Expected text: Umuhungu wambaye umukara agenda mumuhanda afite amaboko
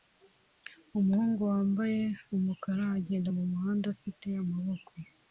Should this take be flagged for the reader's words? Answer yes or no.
no